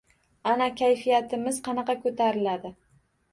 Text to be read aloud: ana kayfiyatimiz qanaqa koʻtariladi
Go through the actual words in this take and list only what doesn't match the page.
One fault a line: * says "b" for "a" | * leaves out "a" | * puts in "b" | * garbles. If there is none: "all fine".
all fine